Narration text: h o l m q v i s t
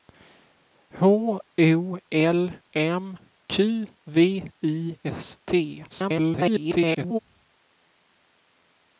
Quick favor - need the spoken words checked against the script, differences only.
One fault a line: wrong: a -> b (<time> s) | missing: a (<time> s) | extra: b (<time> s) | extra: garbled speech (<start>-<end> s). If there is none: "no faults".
extra: garbled speech (5.9-7.2 s)